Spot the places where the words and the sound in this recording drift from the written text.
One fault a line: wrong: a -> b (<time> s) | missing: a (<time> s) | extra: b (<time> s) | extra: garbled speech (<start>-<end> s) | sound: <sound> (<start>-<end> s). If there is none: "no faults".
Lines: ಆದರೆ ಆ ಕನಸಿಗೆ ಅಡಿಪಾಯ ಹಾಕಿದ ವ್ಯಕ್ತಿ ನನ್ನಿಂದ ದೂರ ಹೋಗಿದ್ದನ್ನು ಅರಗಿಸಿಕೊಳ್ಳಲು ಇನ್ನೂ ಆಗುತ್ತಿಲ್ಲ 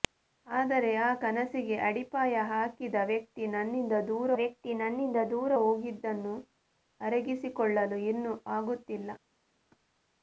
extra: ವ್ಯಕ್ತಿ ನನ್ನಿಂದ ದೂರ (4.4 s)